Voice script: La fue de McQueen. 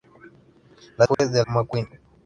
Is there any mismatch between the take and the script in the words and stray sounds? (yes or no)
yes